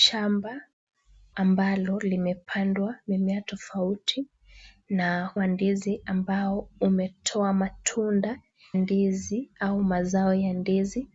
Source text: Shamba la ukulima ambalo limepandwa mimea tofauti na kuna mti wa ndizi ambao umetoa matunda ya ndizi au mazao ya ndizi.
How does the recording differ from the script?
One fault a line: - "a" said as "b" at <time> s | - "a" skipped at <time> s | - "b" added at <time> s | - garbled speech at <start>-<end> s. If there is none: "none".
- "la ukulima" skipped at 0.6 s
- "kuna mti" skipped at 5.3 s
- "ya" skipped at 8.4 s